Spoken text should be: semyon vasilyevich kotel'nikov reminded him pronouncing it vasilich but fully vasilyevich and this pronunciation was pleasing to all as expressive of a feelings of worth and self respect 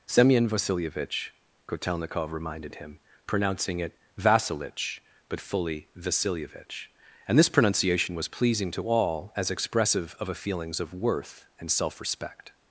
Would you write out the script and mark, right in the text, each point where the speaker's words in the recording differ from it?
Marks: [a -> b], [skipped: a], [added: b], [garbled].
semyon vasilyevich kotel'nikov reminded him pronouncing it vasilich but fully vasilyevich and this pronunciation was pleasing to all as expressive of a feelings of worth and self respect